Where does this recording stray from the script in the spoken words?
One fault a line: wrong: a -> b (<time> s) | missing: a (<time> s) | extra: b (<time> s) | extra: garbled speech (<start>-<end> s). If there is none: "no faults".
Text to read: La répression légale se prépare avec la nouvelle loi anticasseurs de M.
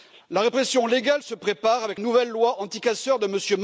missing: la (2.0 s)